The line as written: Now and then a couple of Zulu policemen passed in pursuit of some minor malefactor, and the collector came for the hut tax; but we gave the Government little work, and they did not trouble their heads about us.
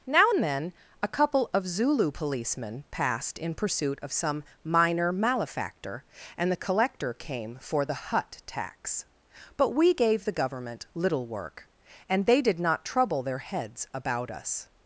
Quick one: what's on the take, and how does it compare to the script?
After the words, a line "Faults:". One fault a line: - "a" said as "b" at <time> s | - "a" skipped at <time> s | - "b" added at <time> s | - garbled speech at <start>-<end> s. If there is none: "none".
Now and then a couple of Zulu policemen passed in pursuit of some minor malefactor, and the collector came for the hut tax; but we gave the Government little work, and they did not trouble their heads about us.
Faults:
none